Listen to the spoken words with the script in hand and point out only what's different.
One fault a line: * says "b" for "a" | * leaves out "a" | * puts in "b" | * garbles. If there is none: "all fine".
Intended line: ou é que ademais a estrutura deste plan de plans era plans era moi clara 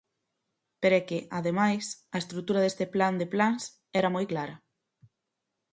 * says "pero" for "ou"
* leaves out "plans era"